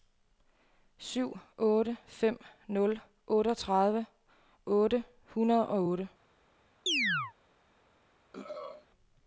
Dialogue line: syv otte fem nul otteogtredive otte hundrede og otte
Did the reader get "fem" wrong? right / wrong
right